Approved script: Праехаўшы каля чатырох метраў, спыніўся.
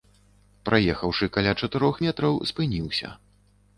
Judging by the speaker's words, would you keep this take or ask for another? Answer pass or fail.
pass